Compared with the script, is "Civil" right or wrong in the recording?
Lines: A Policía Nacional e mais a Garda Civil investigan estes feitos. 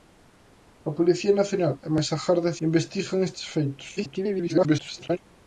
wrong